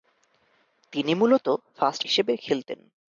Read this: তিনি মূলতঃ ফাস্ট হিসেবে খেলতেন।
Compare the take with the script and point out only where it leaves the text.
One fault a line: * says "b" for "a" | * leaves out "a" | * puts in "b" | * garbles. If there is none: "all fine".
all fine